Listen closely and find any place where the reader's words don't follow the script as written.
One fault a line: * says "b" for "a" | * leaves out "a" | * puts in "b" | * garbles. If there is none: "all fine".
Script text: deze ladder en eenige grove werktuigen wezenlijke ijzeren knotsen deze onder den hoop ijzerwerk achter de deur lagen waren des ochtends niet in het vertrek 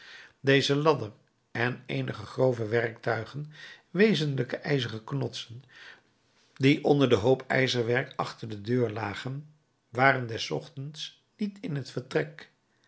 * says "die" for "deze"